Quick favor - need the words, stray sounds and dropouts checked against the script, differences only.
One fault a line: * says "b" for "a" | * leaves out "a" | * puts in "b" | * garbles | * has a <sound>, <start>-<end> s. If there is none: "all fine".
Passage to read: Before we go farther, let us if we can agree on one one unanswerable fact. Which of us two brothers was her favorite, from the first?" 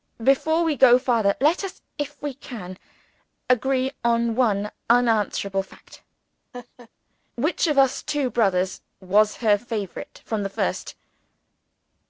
* leaves out "one"
* has a laugh, 6.5-6.9 s